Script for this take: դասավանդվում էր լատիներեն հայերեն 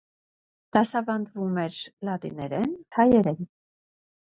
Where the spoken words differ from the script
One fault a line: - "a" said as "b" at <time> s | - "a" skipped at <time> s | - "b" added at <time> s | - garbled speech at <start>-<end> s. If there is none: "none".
none